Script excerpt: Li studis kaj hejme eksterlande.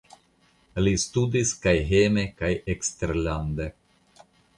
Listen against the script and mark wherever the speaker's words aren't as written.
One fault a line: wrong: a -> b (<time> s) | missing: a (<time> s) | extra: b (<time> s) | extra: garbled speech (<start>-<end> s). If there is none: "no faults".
extra: kaj (2.4 s)